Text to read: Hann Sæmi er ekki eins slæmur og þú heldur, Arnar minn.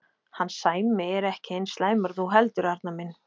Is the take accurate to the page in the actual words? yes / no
yes